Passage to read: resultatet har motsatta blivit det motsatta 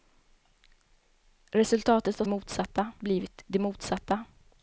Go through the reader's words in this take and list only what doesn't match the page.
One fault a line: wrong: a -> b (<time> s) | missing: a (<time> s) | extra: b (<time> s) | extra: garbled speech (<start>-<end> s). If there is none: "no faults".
no faults